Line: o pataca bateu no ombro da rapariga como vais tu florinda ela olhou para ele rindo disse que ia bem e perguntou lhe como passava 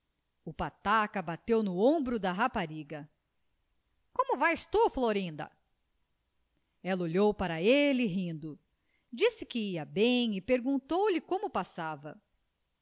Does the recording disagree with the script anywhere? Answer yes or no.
no